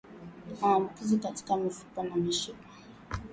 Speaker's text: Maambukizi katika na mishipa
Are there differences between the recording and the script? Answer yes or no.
yes